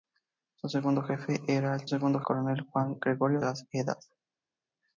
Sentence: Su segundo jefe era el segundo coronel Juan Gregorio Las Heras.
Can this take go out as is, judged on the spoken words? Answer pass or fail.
pass